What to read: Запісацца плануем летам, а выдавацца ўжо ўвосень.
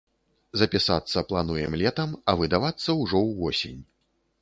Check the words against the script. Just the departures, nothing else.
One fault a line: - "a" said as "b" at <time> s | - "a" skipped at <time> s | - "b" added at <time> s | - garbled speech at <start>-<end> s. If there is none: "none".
none